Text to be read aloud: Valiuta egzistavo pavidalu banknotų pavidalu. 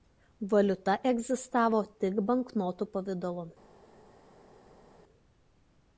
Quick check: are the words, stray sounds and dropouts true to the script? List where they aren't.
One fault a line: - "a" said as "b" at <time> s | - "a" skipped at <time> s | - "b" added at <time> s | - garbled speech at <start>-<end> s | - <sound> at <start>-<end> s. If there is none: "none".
- "pavidalu" said as "tik" at 2.0 s